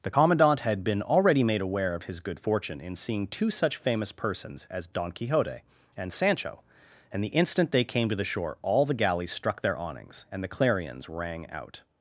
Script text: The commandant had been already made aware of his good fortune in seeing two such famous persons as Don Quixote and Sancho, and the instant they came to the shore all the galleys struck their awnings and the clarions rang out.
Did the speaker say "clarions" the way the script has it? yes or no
yes